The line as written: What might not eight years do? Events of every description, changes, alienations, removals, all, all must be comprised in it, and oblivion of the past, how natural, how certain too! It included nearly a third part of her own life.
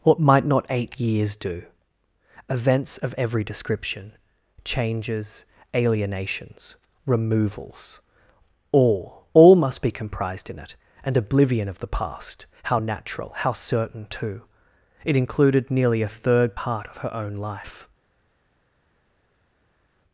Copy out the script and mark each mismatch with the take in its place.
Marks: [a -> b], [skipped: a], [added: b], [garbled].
What might not eight years do? Events of every description, changes, alienations, removals, all, all must be comprised in it, and oblivion of the past, how natural, how certain too! It included nearly a third part of her own life.